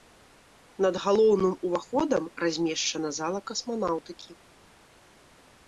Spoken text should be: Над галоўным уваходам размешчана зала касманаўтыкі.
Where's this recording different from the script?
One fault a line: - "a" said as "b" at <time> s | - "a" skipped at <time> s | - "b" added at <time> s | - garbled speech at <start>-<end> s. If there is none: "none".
none